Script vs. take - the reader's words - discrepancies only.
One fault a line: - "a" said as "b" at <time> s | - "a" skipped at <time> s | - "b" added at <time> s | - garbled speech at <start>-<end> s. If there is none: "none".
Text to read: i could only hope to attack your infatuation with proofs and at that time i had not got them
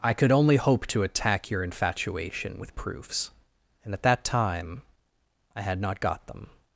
none